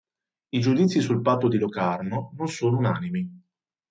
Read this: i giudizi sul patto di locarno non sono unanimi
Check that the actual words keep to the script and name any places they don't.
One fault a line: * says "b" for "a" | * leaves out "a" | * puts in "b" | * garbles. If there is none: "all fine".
all fine